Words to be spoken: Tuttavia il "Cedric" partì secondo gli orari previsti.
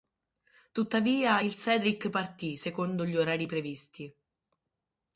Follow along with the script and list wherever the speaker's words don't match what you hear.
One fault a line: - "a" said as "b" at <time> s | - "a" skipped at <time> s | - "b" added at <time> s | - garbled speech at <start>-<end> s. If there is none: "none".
none